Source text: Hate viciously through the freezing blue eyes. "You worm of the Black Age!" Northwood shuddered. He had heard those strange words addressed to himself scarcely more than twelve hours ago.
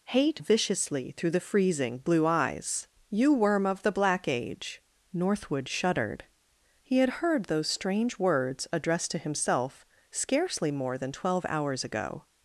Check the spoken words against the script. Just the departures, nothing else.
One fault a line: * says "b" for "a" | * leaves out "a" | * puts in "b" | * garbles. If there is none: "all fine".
all fine